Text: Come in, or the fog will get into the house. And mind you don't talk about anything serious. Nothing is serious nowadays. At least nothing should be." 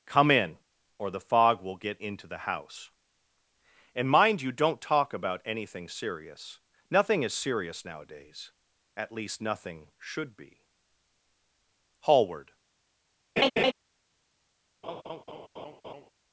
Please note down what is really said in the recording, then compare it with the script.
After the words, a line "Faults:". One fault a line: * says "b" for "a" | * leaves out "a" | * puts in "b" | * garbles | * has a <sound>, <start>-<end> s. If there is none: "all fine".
Come in, or the fog will get into the house. And mind you don't talk about anything serious. Nothing is serious nowadays. At least nothing should be." Hallward
Faults:
* puts in "Hallward"
* has a laugh, 13.4-13.7 s
* has a laugh, 14.8-16.1 s